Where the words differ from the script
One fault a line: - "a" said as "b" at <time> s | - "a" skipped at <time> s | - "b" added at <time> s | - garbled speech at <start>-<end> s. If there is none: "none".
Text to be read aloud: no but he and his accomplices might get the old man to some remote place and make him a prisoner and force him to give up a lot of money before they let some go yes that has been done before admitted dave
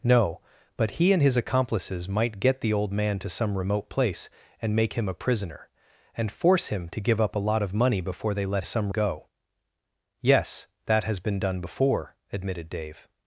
none